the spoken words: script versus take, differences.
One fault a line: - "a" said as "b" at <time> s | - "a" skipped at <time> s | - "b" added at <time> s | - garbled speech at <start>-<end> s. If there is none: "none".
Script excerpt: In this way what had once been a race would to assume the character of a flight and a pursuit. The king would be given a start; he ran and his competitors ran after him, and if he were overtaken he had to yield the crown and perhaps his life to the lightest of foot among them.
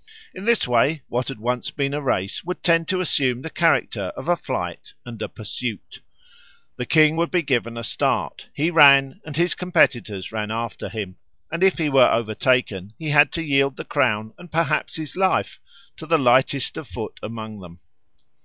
- "tend" added at 2.6 s